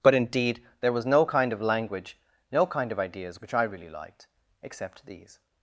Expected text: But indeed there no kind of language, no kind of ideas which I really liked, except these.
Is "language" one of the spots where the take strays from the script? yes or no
no